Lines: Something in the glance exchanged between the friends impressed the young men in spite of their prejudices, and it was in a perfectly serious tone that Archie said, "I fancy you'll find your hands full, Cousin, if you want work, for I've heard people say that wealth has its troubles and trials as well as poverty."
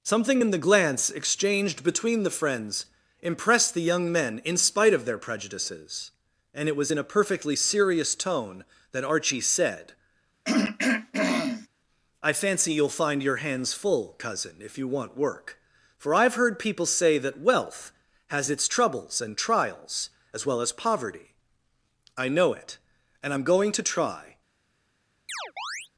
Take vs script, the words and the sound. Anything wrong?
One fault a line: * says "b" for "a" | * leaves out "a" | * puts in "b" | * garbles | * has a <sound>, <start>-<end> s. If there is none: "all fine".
* has a throat clearing, 10.4-11.7 s
* puts in "I know it and I'm going to try"
* has a chirp, 25.3-25.9 s